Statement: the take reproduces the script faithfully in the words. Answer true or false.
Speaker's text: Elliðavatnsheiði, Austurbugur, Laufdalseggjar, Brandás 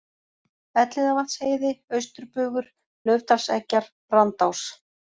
true